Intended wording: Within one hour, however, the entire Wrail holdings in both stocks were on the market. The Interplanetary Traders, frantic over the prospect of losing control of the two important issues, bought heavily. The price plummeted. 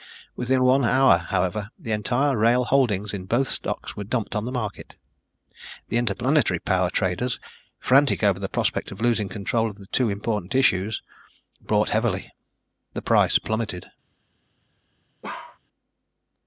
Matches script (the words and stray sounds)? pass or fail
fail